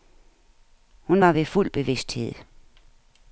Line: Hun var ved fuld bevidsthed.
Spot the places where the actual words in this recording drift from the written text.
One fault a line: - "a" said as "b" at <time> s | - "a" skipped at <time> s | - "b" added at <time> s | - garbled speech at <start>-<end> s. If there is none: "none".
none